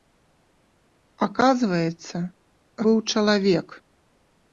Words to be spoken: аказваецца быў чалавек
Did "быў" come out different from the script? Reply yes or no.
no